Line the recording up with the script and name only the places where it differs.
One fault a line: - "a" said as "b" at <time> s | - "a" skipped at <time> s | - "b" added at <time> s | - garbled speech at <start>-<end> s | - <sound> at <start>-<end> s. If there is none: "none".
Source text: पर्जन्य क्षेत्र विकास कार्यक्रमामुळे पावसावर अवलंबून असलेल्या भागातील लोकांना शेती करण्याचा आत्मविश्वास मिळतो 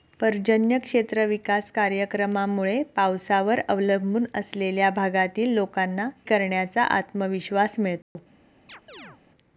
- "शेती" skipped at 6.1 s
- dropout at 8.0-8.2 s
- chirp at 8.7-9.2 s